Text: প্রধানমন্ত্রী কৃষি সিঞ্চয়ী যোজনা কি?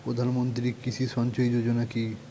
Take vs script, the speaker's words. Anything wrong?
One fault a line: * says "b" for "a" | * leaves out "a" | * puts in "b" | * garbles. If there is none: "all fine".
all fine